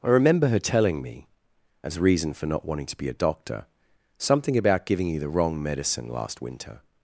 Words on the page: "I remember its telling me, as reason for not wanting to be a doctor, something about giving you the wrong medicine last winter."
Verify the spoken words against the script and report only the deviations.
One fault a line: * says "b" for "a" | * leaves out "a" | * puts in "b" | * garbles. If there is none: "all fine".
* says "her" for "its"